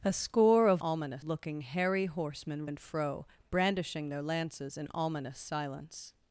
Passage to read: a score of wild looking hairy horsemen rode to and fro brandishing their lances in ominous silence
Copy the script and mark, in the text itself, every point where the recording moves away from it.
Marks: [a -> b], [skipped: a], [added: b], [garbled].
a score of [wild -> ominous] looking hairy horsemen [skipped: rode to] and fro brandishing their lances in ominous silence